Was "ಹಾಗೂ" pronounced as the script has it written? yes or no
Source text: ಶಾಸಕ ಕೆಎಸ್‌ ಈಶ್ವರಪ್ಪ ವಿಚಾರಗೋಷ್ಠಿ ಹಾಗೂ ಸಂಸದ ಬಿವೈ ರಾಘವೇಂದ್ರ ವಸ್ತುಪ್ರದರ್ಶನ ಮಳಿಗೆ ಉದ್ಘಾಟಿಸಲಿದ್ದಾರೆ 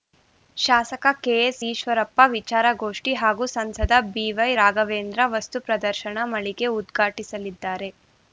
yes